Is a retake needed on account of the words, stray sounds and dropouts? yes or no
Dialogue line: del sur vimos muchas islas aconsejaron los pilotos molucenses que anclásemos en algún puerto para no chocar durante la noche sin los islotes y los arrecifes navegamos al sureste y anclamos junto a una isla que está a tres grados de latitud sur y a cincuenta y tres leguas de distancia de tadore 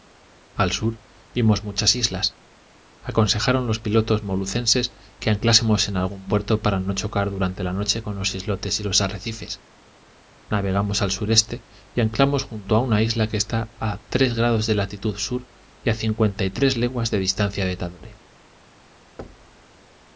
yes